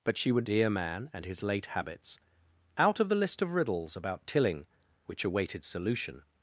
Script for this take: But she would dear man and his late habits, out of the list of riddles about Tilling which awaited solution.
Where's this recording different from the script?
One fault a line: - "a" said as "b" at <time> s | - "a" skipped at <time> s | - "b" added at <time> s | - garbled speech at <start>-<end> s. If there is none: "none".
none